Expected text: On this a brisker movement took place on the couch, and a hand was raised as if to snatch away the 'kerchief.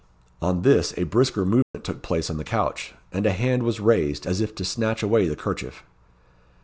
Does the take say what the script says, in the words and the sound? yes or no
no